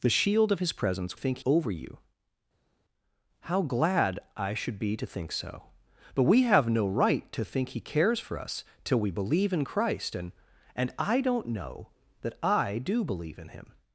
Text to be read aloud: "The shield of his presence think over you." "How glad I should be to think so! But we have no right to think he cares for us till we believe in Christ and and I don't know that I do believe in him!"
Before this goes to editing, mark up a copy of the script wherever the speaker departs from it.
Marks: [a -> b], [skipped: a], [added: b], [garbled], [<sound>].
"The shield of his presence think over you." "How glad I should be to think so! But we have no right to think he cares for us till we believe in Christ and and I don't know that I do believe in him!"